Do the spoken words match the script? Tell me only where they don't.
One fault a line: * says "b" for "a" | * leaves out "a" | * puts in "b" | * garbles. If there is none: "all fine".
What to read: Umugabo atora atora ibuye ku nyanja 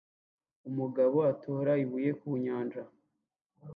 * leaves out "atora"